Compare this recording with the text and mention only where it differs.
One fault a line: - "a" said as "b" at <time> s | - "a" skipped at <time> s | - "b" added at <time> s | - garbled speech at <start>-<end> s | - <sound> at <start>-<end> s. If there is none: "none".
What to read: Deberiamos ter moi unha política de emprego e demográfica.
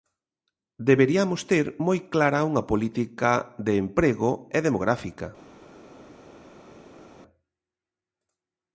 - "clara" added at 2.1 s